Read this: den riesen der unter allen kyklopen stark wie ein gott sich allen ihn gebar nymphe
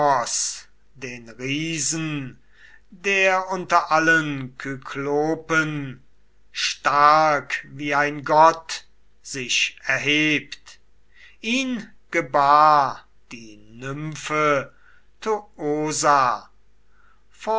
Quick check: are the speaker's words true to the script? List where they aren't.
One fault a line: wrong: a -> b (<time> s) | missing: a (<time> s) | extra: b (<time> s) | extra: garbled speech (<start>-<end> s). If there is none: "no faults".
wrong: allen -> erhebt (9.8 s)
extra: die (13.3 s)